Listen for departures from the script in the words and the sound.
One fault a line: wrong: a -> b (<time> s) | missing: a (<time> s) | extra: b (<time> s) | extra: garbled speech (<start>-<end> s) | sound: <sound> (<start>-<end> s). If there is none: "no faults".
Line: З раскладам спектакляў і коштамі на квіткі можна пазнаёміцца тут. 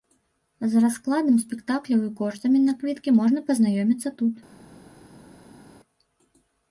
no faults